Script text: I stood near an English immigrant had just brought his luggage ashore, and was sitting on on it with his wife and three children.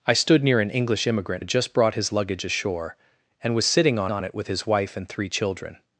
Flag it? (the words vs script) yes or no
no